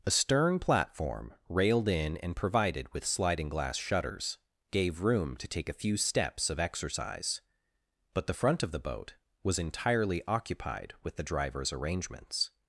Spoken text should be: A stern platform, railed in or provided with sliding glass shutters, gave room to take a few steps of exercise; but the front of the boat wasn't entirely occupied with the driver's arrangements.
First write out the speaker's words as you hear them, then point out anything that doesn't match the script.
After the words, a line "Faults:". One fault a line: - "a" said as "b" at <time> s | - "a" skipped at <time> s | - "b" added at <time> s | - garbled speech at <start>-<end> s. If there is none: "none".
A stern platform, railed in and provided with sliding glass shutters, gave room to take a few steps of exercise; but the front of the boat was entirely occupied with the driver's arrangements.
Faults:
- "or" said as "and" at 2.2 s
- "wasn't" said as "was" at 9.4 s